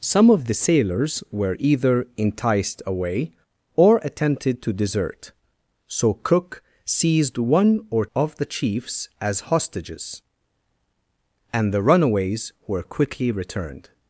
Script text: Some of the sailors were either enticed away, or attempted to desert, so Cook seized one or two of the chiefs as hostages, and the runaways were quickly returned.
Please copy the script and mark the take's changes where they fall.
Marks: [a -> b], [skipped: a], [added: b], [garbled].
Some of the sailors were either enticed away, or attempted to desert, so Cook seized one or [skipped: two] of the chiefs as hostages, and the runaways were quickly returned.